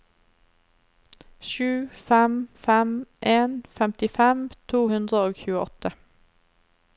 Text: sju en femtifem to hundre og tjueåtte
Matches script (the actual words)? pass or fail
fail